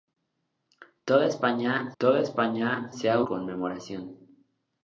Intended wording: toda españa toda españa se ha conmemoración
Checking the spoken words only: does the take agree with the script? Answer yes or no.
yes